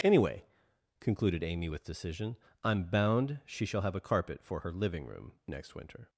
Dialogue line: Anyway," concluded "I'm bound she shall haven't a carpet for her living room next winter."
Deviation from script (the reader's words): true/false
true